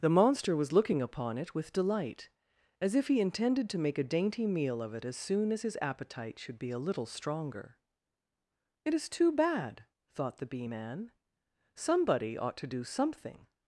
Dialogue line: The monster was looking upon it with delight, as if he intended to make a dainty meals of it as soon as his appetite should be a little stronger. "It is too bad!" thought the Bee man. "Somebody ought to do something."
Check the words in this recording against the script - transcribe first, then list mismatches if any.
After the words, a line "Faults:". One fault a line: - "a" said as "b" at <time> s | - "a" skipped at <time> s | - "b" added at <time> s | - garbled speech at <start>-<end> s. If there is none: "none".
The monster was looking upon it with delight, as if he intended to make a dainty meal of it as soon as his appetite should be a little stronger. "It is too bad!" thought the Bee man. "Somebody ought to do something."
Faults:
- "meals" said as "meal" at 4.5 s